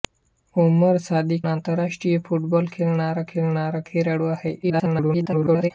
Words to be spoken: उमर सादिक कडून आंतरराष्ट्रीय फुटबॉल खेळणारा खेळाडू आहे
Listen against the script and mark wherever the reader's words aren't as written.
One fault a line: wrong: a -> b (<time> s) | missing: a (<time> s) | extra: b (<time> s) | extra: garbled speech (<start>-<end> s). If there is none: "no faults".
missing: कडून (1.4 s)
extra: खेळणारा (3.3 s)
extra: garbled speech (4.6-5.7 s)